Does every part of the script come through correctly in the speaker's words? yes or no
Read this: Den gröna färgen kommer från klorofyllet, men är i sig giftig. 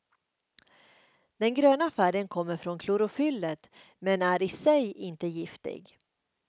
no